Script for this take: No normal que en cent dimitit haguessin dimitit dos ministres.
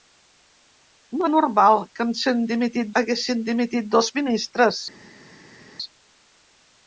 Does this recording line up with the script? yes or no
yes